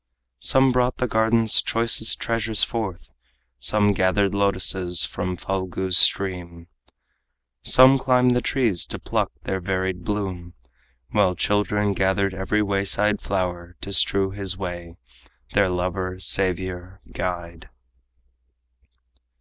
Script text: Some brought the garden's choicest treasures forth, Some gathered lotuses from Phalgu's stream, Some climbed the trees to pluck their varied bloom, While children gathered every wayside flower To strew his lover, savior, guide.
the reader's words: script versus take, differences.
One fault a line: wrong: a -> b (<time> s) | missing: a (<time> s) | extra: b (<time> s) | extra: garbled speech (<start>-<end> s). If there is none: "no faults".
extra: way their (14.6 s)